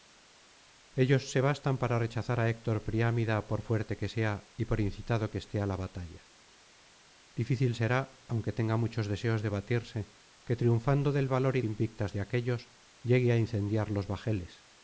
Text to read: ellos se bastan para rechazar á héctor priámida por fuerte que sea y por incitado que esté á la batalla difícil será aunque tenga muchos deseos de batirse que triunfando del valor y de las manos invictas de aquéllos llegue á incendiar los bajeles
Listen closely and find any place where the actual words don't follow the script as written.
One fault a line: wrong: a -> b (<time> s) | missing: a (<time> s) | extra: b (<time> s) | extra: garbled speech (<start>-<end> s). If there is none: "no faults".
missing: de las manos (11.6 s)